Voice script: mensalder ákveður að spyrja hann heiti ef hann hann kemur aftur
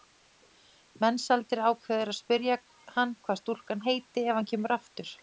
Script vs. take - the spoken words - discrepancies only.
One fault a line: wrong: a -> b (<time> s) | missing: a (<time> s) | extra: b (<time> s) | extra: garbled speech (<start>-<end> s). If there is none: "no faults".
extra: hvað stúlkan (3.3 s)
missing: hann (4.5 s)